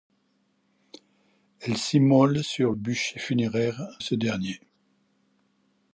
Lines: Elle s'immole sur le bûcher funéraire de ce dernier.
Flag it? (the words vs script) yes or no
yes